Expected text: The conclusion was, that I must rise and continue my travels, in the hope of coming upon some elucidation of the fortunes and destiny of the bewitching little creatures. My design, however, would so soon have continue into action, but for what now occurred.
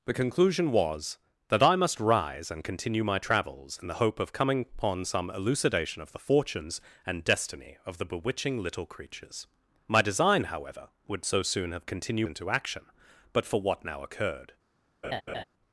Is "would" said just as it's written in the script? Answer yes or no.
yes